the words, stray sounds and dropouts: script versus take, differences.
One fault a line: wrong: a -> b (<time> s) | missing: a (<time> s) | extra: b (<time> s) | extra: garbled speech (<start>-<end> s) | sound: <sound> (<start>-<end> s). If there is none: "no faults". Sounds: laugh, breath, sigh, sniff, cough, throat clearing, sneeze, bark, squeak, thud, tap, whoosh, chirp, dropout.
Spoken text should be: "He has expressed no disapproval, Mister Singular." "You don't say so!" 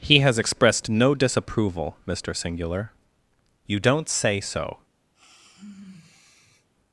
sound: sigh (5.1-6.7 s)